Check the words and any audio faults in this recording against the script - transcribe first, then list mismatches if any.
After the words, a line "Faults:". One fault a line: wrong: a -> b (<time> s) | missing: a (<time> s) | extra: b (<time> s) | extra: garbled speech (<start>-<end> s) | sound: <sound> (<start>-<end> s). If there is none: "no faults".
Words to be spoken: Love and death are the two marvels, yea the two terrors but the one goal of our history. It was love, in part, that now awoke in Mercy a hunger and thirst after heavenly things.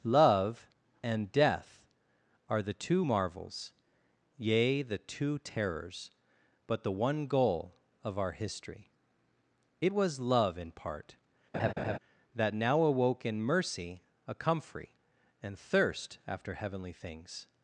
Love and death are the two marvels, yea the two terrors but the one goal of our history. It was love, in part, that now awoke in Mercy a comfrey and thirst after heavenly things.
Faults:
sound: laugh (11.5-12.0 s)
wrong: hunger -> comfrey (14.3 s)